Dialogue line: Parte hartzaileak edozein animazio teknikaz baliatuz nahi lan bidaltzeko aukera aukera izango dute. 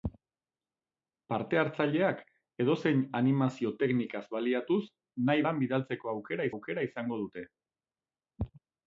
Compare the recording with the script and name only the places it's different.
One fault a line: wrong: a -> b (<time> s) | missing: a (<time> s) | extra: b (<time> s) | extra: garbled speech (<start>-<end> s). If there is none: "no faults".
no faults